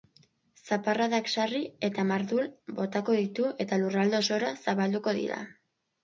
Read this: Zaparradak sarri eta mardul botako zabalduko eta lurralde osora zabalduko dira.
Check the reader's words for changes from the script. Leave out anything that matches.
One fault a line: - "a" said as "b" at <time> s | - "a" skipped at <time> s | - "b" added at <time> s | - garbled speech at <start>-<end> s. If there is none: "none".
- "zabalduko" said as "ditu" at 3.2 s